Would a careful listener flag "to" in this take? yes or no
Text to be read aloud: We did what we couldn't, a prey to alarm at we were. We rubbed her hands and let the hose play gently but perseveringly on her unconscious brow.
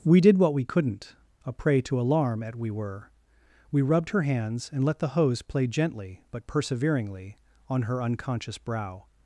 no